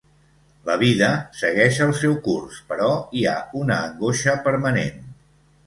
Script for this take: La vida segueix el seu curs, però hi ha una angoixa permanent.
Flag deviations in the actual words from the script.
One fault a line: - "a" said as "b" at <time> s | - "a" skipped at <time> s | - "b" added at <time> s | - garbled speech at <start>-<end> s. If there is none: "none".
none